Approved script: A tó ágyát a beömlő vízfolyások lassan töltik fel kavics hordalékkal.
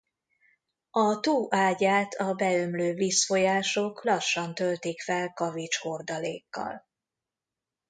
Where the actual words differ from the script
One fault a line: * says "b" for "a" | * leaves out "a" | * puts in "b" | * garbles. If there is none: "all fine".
all fine